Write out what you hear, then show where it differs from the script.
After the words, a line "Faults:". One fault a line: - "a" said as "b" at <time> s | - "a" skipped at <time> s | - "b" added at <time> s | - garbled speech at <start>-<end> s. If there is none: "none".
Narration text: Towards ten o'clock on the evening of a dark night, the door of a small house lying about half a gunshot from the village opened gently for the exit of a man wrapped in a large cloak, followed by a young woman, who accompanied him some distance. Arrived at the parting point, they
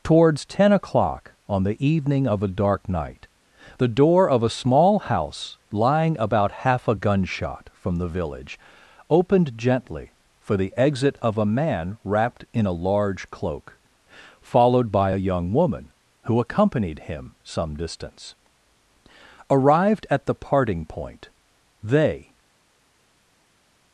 Towards ten o'clock on the evening of a dark night, the door of a small house lying about half a gunshot from the village opened gently for the exit of a man wrapped in a large cloak, followed by a young woman, who accompanied him some distance. Arrived at the parting point, they
Faults:
none